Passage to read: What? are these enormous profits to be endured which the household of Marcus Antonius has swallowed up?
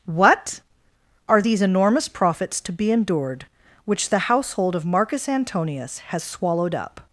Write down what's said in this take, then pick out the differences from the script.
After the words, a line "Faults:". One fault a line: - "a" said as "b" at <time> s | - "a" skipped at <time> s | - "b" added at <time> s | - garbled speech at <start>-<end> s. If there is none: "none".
What? are these enormous profits to be endured which the household of Marcus Antonius has swallowed up?
Faults:
none